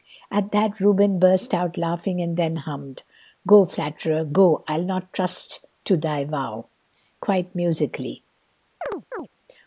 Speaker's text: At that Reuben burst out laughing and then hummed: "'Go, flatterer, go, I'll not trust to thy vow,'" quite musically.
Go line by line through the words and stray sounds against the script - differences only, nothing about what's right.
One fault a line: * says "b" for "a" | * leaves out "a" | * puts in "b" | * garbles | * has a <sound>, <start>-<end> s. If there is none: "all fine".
* has a chirp, 8.8-9.3 s